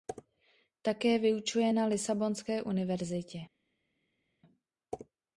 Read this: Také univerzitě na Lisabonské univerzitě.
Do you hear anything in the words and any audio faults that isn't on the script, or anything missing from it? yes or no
yes